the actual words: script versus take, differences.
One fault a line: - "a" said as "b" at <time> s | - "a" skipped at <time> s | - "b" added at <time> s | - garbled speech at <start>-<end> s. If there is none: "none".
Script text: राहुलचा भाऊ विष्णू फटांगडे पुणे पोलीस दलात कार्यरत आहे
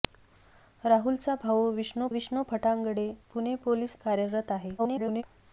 - "विष्णू" added at 2.1 s
- "दलात" skipped at 4.0 s
- garbled speech at 4.8-5.2 s